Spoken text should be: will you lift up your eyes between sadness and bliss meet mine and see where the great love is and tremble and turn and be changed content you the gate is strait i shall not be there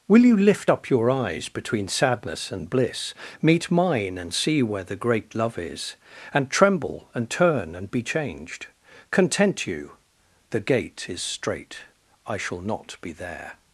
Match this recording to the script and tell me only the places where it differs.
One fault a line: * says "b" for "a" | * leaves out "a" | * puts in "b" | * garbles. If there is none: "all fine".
all fine